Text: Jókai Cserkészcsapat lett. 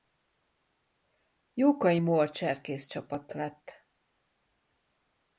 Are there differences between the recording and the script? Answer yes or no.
yes